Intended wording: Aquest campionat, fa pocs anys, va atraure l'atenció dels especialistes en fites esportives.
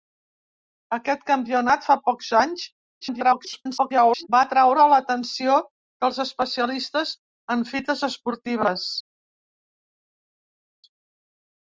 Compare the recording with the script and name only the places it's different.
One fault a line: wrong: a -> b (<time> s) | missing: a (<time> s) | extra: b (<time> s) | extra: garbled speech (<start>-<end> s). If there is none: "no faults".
extra: garbled speech (3.0-4.3 s)